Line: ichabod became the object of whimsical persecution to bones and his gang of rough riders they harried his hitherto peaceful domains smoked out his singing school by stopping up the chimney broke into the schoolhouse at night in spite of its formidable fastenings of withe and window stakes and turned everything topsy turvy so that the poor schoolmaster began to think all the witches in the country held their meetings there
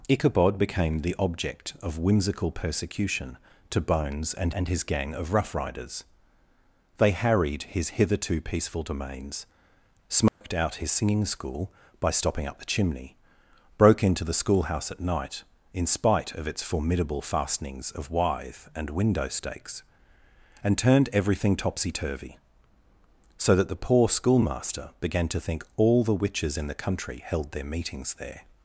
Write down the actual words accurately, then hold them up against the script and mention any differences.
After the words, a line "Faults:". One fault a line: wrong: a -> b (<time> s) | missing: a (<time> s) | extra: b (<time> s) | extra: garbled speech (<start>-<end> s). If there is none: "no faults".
ichabod became the object of whimsical persecution to bones and and his gang of rough riders they harried his hitherto peaceful domains smoked out his singing school by stopping up the chimney broke into the schoolhouse at night in spite of its formidable fastenings of withe and window stakes and turned everything topsy turvy so that the poor schoolmaster began to think all the witches in the country held their meetings there
Faults:
extra: and (4.5 s)